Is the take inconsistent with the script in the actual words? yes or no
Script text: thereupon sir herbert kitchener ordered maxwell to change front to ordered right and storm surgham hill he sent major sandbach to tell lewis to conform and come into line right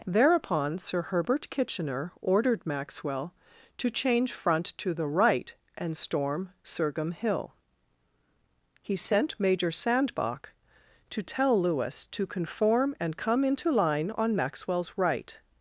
yes